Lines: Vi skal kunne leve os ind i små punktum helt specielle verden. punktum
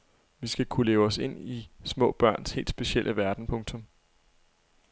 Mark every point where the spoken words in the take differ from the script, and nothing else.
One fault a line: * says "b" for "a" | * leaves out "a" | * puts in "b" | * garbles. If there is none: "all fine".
* says "børns" for "punktum"